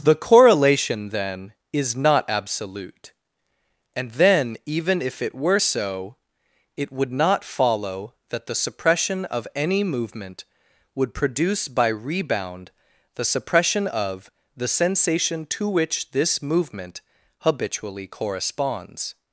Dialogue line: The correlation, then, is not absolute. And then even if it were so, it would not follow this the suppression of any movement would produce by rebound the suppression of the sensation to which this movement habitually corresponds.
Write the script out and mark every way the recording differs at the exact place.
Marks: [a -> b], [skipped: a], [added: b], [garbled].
The correlation, then, is not absolute. And then even if it were so, it would not follow [this -> that] the suppression of any movement would produce by rebound the suppression of the sensation to which this movement habitually corresponds.